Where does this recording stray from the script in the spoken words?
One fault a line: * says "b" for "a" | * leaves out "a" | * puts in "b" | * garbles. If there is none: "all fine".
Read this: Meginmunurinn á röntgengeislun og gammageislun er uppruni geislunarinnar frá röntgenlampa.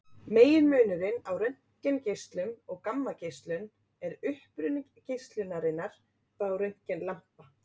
all fine